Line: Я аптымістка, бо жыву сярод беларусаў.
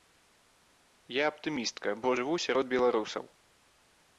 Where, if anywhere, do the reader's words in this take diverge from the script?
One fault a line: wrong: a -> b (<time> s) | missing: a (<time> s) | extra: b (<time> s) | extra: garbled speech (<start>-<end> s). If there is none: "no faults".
no faults